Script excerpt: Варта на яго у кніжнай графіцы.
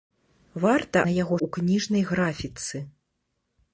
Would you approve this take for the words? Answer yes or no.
yes